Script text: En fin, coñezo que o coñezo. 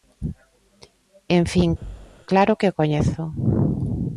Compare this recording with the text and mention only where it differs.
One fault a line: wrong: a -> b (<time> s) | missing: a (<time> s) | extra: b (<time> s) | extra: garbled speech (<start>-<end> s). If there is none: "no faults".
wrong: coñezo -> claro (2.3 s)